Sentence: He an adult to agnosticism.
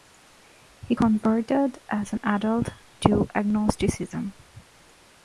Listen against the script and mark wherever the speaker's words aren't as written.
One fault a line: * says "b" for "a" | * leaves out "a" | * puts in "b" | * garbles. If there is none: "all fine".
* puts in "converted as"